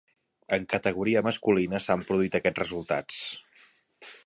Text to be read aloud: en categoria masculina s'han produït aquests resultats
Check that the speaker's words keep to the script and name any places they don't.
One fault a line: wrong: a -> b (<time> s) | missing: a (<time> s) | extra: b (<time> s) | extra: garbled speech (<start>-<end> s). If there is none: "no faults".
no faults